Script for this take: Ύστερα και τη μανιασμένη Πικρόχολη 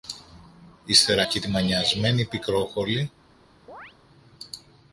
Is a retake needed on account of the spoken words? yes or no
no